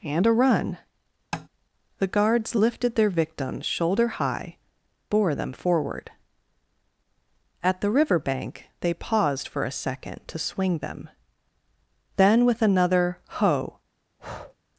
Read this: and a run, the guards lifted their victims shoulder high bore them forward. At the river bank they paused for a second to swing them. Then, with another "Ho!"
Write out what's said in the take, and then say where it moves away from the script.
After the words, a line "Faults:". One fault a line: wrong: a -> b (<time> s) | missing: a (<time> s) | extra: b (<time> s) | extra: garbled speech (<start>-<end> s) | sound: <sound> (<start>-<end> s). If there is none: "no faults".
and a run, the guards lifted their victims shoulder high bore them forward. At the river bank they paused for a second to swing them. Then, with another "Ho!"
Faults:
sound: tap (1.3-1.5 s)
sound: breath (14.2-14.6 s)